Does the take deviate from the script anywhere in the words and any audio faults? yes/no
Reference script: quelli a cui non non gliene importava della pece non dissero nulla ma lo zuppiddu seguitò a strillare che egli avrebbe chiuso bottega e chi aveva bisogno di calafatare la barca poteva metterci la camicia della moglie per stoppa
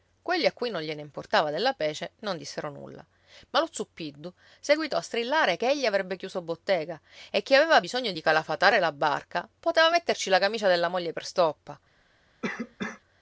yes